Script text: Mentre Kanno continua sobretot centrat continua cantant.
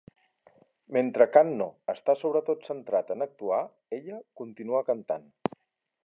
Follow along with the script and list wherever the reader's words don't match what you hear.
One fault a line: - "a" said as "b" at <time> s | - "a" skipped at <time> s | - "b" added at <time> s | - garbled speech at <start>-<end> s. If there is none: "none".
- "continua" said as "està" at 1.9 s
- "en actuar ella" added at 3.1 s